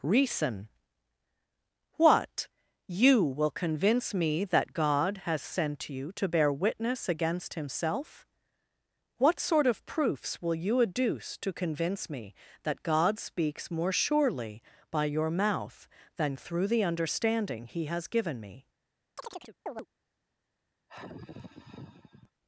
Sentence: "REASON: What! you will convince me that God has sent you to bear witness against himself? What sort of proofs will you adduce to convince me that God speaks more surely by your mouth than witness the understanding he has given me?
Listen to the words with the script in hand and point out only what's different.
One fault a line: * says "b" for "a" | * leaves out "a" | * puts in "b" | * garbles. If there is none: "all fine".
* says "through" for "witness"